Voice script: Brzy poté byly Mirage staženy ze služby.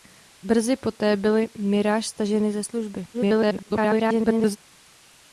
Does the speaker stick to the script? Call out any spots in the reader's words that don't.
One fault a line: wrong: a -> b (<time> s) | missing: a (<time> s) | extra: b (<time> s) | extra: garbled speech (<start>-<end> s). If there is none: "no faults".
extra: garbled speech (3.1-4.6 s)